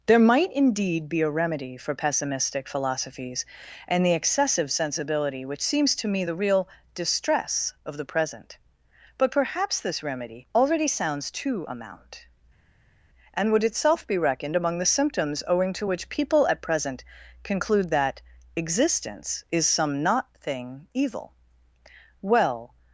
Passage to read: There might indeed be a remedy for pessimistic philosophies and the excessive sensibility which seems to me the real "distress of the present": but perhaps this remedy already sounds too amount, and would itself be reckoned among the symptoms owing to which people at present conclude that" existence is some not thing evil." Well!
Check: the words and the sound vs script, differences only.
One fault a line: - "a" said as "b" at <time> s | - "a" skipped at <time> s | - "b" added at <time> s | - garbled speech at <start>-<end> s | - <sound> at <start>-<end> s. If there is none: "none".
none